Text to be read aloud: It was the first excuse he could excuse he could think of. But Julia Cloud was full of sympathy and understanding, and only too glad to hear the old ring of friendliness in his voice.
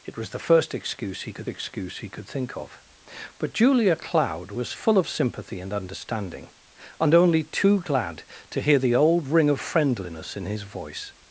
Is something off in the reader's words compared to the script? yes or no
no